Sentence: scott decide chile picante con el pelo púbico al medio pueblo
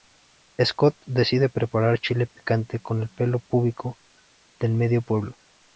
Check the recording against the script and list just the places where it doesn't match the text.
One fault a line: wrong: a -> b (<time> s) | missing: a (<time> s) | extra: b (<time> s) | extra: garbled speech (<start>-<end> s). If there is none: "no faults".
extra: preparar (1.5 s)
wrong: al -> del (4.6 s)